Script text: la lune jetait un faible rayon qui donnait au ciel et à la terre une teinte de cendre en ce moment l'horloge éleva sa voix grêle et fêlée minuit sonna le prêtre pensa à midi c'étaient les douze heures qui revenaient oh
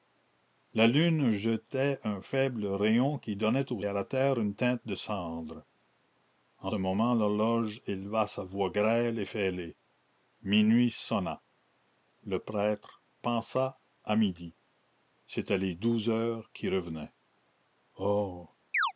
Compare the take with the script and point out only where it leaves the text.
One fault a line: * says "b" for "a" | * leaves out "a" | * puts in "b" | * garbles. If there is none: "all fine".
* leaves out "ciel et"
* leaves out "ce"